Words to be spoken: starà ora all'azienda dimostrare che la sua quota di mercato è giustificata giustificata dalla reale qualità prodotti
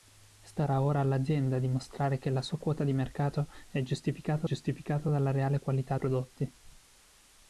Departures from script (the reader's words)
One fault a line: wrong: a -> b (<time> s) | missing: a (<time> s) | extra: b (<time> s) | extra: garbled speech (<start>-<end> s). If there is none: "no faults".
no faults